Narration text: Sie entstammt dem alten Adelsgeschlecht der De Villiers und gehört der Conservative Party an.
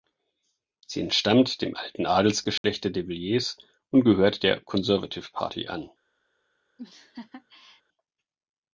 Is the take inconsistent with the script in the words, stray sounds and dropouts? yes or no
yes